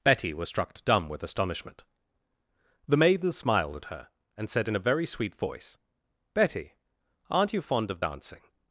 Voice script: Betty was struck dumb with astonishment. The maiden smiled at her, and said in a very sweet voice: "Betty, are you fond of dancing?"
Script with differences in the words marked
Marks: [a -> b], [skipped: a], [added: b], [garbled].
Betty was struck dumb with astonishment. The maiden smiled at her, and said in a very sweet voice: "Betty, [are -> aren't] you fond of dancing?"